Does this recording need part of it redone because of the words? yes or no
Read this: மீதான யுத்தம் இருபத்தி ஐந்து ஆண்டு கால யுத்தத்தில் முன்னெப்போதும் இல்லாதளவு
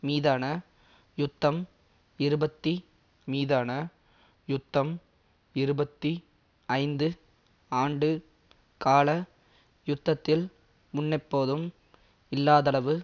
yes